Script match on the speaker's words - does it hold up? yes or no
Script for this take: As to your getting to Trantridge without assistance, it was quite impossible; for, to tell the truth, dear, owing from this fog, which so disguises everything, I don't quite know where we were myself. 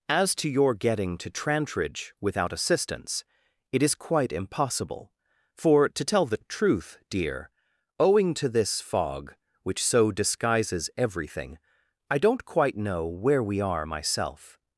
no